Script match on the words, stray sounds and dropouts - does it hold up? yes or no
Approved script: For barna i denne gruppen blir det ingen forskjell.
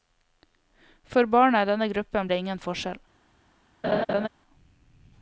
no